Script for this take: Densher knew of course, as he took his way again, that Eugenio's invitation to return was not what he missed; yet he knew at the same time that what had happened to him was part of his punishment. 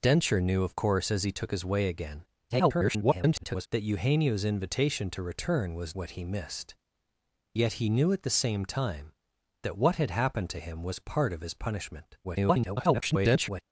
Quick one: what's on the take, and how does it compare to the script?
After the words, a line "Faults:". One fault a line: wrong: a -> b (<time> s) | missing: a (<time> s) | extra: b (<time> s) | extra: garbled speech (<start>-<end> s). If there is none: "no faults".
Densher knew of course, as he took his way again, [garbled] that Eugenio's invitation to return was what he missed; yet he knew at the same time that what had happened to him was part of his punishment. [garbled]
Faults:
extra: garbled speech (2.5-3.7 s)
missing: not (6.0 s)
extra: garbled speech (12.2-13.6 s)